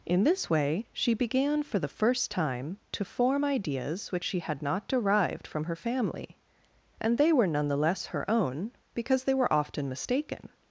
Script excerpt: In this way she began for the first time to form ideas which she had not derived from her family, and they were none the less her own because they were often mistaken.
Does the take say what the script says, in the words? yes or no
yes